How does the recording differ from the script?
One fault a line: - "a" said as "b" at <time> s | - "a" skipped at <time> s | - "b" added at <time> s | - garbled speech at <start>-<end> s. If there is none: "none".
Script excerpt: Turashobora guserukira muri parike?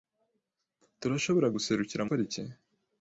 - "muri" skipped at 2.0 s